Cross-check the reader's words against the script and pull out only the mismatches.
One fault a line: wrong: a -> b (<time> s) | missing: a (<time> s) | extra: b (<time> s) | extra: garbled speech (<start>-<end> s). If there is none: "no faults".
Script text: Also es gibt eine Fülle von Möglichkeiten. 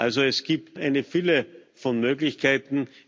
no faults